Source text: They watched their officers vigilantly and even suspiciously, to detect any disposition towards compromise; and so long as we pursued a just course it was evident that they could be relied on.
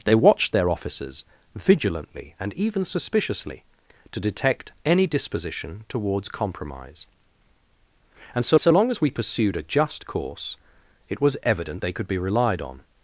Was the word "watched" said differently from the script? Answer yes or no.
no